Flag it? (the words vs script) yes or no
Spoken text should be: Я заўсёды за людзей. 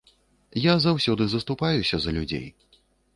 yes